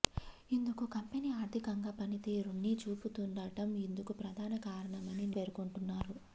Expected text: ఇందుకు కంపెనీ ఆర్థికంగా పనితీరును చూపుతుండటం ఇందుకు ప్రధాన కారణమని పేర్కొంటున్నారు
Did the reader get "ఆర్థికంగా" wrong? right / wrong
right